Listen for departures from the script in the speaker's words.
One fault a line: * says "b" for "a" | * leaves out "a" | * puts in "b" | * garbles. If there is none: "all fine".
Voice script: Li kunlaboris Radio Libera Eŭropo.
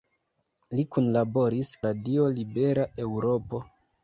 all fine